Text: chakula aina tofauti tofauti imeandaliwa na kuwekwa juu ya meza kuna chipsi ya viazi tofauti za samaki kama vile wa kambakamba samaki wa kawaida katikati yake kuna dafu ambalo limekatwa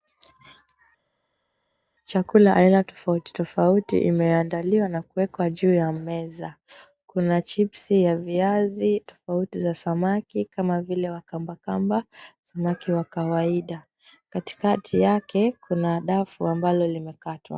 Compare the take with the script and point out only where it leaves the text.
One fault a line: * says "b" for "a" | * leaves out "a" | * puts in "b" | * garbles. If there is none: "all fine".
all fine